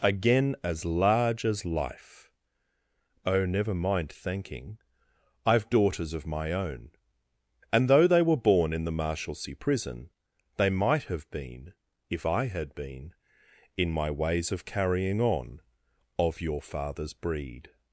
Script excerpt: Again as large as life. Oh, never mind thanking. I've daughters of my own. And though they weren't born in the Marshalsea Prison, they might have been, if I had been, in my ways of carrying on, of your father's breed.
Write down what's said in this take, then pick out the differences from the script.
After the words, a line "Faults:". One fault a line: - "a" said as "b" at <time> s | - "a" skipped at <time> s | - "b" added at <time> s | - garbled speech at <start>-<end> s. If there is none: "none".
Again as large as life. Oh, never mind thanking. I've daughters of my own. And though they were born in the Marshalsea Prison, they might have been, if I had been, in my ways of carrying on, of your father's breed.
Faults:
- "weren't" said as "were" at 8.2 s